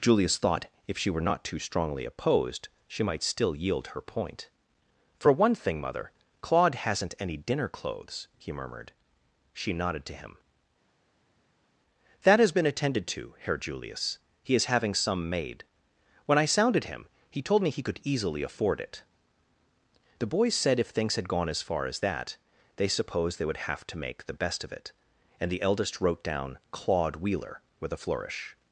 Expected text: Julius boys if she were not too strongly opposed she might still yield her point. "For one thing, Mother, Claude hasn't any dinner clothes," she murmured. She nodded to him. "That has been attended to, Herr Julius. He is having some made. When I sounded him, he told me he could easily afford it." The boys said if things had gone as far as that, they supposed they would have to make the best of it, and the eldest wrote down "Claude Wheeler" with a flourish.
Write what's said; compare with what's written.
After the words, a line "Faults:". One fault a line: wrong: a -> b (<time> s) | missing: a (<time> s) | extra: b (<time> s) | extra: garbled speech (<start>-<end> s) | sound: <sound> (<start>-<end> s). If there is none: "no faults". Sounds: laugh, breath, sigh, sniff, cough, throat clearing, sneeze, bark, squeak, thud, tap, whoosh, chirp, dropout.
Julius thought if she were not too strongly opposed she might still yield her point. "For one thing, Mother, Claude hasn't any dinner clothes," he murmured. She nodded to him. "That has been attended to, Herr Julius. He is having some made. When I sounded him, he told me he could easily afford it." The boys said if things had gone as far as that, they supposed they would have to make the best of it, and the eldest wrote down "Claude Wheeler" with a flourish.
Faults:
wrong: boys -> thought (0.4 s)
wrong: she -> he (8.4 s)